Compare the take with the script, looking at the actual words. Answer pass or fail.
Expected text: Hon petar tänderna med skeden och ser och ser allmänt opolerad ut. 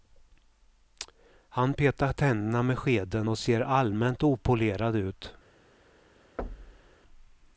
fail